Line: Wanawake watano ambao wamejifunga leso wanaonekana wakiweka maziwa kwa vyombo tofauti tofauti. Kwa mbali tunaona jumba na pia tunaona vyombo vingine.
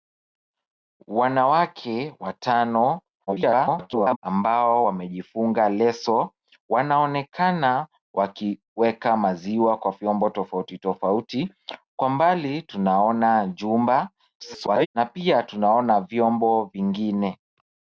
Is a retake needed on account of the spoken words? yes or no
yes